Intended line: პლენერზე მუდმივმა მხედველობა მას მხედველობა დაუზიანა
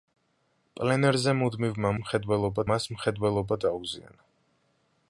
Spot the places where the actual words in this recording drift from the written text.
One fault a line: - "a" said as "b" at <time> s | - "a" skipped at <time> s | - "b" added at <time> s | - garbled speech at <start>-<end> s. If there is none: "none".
none